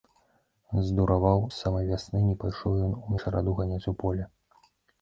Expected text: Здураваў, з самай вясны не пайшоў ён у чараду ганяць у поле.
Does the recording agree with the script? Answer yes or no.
yes